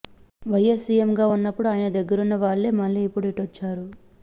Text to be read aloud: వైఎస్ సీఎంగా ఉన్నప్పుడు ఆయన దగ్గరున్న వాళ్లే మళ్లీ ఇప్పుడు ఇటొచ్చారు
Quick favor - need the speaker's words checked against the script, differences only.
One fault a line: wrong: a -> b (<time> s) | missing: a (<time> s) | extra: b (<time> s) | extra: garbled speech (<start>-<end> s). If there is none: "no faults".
no faults